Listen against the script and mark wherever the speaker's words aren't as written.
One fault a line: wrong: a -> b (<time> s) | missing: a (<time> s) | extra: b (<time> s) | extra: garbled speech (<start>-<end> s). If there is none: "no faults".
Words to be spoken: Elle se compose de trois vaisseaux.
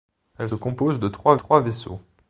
missing: se (0.5 s)
extra: trois (1.3 s)